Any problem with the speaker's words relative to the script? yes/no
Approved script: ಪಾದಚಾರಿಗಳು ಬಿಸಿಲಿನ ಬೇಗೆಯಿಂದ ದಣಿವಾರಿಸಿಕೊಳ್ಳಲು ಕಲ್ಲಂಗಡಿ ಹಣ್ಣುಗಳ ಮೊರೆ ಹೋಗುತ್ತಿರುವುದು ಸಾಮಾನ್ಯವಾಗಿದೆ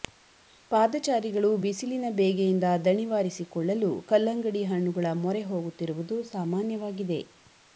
no